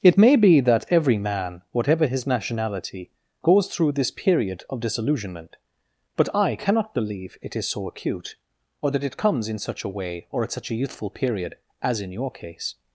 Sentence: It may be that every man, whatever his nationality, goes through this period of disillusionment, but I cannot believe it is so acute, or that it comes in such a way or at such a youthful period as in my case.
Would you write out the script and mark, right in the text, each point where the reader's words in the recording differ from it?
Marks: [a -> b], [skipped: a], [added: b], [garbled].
It may be that every man, whatever his nationality, goes through this period of disillusionment, but I cannot believe it is so acute, or that it comes in such a way or at such a youthful period as in [my -> your] case.